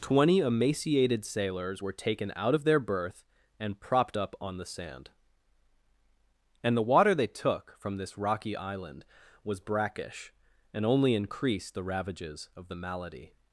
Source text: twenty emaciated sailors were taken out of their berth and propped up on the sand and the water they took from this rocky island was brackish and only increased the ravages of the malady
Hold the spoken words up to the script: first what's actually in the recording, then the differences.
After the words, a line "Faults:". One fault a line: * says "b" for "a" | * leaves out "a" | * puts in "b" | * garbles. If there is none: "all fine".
twenty emaciated sailors were taken out of their berth and propped up on the sand and the water they took from this rocky island was brackish and only increased the ravages of the malady
Faults:
all fine